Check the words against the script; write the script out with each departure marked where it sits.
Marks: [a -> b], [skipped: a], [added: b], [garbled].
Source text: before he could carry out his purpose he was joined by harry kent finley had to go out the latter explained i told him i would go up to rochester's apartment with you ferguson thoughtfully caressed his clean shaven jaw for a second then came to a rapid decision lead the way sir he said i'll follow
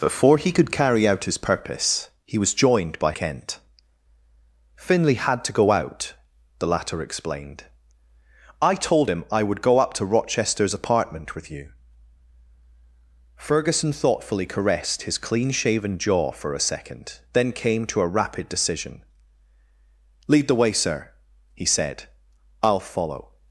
before he could carry out his purpose he was joined by [skipped: harry] kent finley had to go out the latter explained i told him i would go up to rochester's apartment with you ferguson thoughtfully caressed his clean shaven jaw for a second then came to a rapid decision lead the way sir he said i'll follow